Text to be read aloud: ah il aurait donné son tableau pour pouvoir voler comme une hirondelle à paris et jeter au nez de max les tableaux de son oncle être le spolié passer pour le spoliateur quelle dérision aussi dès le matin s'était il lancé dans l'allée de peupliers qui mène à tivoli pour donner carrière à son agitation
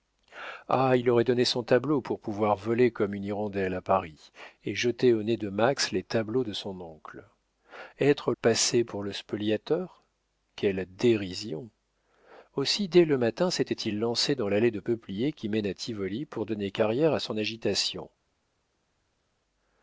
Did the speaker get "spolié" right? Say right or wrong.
wrong